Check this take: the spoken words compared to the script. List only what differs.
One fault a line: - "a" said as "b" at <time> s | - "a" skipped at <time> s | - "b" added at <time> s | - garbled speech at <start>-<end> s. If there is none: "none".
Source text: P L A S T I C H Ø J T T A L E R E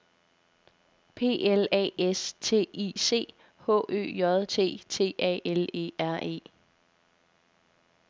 none